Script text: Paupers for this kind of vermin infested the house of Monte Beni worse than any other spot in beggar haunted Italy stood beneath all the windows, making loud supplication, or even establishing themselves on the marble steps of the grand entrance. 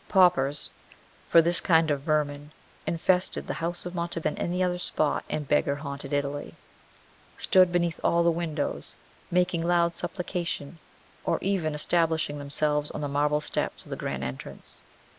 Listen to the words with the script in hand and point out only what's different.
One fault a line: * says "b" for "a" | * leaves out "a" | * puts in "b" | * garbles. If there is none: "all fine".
* leaves out "Beni worse"